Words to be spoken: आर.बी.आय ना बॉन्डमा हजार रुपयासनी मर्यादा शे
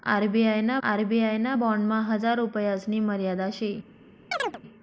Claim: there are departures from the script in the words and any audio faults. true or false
true